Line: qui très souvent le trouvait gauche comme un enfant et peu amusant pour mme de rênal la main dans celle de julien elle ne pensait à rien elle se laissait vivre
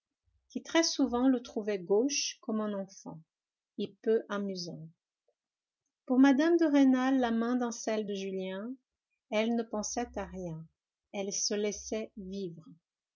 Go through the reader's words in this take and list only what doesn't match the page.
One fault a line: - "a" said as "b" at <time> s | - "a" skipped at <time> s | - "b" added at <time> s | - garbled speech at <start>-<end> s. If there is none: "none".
none